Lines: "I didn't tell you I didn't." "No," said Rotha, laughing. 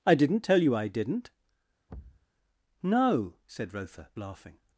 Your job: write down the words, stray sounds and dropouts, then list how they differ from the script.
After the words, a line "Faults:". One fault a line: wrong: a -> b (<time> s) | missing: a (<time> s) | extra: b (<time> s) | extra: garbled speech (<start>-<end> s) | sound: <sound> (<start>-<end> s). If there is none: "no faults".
"I didn't tell you I didn't." "No," said Rotha, laughing.
Faults:
sound: thud (1.9-2.3 s)